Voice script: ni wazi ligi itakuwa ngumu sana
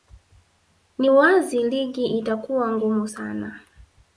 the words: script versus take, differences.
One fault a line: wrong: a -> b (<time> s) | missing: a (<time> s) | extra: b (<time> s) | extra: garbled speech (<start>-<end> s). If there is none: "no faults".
no faults